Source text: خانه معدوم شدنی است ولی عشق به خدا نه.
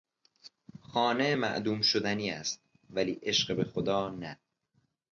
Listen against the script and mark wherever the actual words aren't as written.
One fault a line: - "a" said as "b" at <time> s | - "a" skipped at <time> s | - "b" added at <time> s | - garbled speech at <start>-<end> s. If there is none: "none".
none